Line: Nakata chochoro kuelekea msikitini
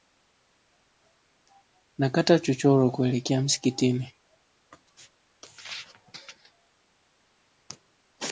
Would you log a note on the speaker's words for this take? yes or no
no